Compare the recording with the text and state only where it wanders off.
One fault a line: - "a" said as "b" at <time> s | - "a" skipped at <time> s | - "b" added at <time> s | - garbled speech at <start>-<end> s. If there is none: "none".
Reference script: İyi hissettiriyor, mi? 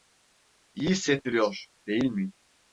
- "değil" added at 1.9 s